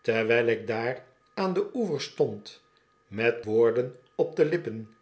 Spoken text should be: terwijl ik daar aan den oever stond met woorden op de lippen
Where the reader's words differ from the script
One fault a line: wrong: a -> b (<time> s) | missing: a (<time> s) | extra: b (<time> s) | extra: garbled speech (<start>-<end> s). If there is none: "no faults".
no faults